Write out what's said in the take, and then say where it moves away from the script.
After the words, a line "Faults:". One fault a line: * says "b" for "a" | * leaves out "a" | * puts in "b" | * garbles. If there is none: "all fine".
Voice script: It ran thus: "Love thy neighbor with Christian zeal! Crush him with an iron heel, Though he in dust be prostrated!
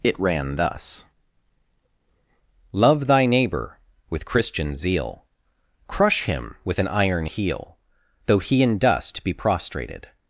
It ran thus: "Love thy neighbor with Christian zeal! Crush him with an iron heel, Though he in dust be prostrated!
Faults:
all fine